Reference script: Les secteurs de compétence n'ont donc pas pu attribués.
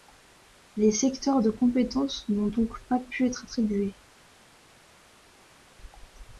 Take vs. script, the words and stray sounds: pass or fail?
fail